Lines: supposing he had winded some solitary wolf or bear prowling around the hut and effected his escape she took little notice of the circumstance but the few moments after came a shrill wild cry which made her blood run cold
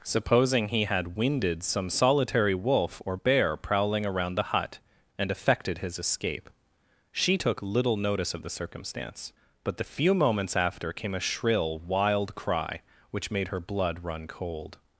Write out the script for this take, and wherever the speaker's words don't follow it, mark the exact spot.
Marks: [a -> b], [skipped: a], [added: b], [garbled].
supposing he had winded some solitary wolf or bear prowling around the hut and effected his escape she took little notice of the circumstance but the few moments after came a shrill wild cry which made her blood run cold